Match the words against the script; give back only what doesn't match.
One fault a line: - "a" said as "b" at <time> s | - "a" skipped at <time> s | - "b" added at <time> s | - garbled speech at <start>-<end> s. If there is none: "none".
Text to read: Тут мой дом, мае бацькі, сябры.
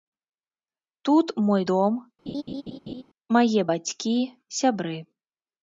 none